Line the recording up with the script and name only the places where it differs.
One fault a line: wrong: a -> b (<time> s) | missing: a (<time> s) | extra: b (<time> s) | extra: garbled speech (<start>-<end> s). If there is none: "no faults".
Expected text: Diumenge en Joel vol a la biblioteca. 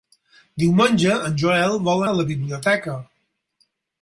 no faults